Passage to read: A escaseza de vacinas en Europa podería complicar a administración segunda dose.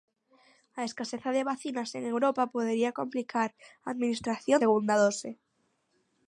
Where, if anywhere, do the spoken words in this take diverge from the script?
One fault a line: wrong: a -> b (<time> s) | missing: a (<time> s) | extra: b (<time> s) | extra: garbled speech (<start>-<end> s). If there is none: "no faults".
no faults